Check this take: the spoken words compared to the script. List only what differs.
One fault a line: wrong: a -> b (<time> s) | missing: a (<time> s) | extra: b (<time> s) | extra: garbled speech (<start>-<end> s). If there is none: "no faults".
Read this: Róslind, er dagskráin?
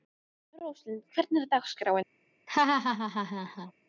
extra: hvernig (1.1 s)